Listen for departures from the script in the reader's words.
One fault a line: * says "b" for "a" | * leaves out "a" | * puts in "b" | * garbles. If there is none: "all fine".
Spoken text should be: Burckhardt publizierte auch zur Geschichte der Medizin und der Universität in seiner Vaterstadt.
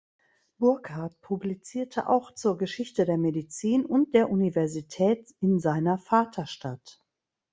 all fine